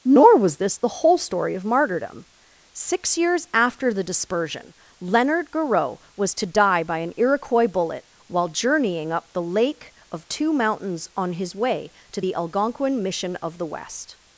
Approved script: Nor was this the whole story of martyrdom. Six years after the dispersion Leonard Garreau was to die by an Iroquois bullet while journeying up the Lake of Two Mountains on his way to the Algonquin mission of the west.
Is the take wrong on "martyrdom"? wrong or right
right